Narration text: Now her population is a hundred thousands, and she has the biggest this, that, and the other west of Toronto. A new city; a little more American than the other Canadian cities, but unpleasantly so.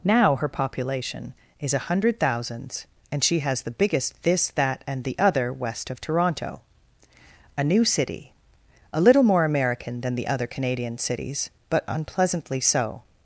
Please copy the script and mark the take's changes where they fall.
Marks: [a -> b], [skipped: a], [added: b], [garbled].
Now her population is a hundred thousands, and she has the biggest this, that, and the other west of Toronto. A new city; a little more American than the other Canadian cities, but unpleasantly so.